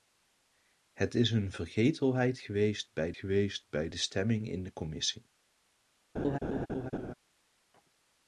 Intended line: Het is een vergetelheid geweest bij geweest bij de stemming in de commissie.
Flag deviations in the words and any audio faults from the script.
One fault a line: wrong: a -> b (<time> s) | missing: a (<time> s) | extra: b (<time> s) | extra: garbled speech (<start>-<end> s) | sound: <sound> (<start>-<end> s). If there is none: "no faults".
sound: laugh (6.1-7.1 s)